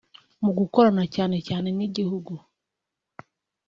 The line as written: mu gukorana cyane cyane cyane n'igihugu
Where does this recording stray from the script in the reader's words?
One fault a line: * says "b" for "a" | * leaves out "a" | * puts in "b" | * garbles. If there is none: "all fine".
* leaves out "cyane"